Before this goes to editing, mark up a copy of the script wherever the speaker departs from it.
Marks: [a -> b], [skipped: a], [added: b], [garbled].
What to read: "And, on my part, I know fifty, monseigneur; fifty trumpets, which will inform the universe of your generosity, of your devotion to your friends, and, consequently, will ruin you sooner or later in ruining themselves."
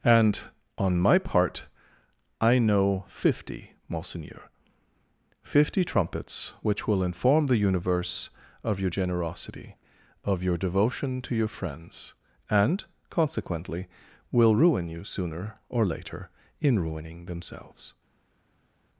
"And, on my part, I know fifty, monseigneur; fifty trumpets, which will inform the universe of your generosity, of your devotion to your friends, and, consequently, will ruin you sooner or later in ruining themselves."